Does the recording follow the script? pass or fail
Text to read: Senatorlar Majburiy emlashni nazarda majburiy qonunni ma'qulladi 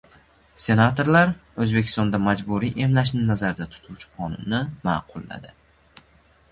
fail